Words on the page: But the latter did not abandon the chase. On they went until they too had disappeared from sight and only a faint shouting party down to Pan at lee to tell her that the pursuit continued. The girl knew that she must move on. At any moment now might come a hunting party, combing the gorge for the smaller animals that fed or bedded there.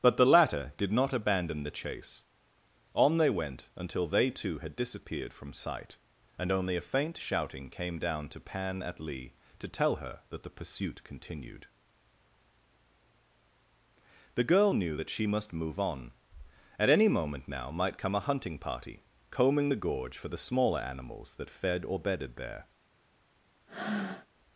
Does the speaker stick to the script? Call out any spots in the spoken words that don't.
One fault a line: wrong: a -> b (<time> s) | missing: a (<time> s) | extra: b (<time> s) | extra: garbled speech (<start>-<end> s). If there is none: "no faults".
wrong: party -> came (7.7 s)